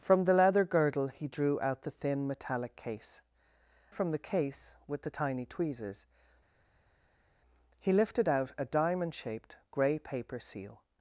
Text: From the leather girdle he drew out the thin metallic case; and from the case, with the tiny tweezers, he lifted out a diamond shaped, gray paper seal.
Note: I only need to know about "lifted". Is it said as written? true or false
true